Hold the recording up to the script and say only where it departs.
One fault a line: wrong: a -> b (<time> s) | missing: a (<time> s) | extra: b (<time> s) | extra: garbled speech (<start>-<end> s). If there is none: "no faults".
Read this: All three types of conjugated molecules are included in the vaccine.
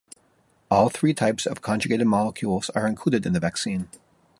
no faults